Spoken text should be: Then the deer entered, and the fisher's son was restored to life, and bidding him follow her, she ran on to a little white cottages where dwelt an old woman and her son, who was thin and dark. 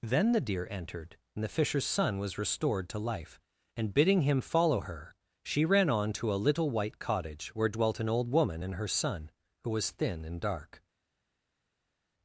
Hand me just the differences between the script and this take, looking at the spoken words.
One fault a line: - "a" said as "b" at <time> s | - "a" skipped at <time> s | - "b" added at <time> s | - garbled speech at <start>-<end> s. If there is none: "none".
- "cottages" said as "cottage" at 7.0 s